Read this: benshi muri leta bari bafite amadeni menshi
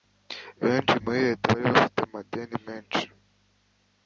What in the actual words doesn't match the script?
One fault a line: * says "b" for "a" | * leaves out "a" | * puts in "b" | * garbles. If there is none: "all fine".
all fine